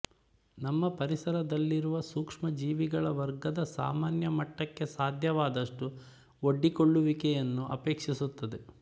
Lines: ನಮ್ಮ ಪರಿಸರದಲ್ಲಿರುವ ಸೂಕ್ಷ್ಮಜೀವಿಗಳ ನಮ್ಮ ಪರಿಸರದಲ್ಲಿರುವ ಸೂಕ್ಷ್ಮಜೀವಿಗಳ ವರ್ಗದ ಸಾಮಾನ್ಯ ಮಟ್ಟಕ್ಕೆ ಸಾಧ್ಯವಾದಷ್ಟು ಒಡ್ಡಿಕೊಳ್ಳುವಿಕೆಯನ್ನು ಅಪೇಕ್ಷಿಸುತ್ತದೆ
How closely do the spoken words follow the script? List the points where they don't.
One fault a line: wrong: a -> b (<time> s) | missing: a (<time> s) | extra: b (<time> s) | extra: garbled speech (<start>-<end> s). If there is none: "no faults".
missing: ನಮ್ಮ ಪರಿಸರದಲ್ಲಿರುವ ಸೂಕ್ಷ್ಮಜೀವಿಗಳ (3.0 s)